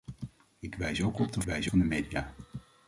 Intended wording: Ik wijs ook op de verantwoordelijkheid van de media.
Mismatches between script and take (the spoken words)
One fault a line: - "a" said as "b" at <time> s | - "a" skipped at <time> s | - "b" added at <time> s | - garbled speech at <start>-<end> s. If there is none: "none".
- "verantwoordelijkheid" said as "wijs" at 1.4 s